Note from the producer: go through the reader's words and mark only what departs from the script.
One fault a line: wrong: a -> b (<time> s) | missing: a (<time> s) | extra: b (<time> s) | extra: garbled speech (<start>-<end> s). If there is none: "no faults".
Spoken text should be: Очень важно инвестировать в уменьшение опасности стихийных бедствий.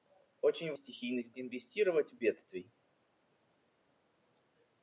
wrong: важно -> стихийных (0.7 s)
missing: уменьшение опасности стихийных (2.2 s)